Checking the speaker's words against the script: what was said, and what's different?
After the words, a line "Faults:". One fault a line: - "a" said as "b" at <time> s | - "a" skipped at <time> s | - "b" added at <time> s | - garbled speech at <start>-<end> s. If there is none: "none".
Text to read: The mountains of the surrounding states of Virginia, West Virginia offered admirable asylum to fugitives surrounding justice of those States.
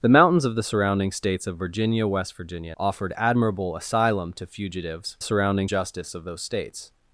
The mountains of the surrounding states of Virginia, West Virginia offered admirable asylum to fugitives surrounding justice of those States.
Faults:
none